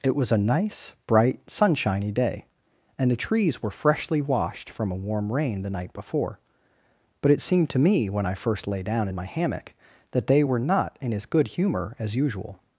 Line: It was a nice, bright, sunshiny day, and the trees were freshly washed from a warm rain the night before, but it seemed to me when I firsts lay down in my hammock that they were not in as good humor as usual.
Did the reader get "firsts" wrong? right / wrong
wrong